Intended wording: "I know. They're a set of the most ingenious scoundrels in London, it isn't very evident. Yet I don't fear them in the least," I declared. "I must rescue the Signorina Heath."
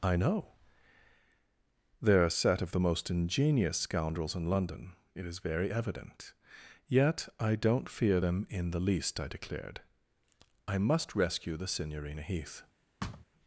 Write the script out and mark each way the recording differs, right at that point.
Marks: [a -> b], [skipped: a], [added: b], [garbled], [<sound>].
"I know. They're a set of the most ingenious scoundrels in London, it [isn't -> is] very evident. Yet I don't fear them in the least," I declared. "I must rescue the Signorina Heath." [thud]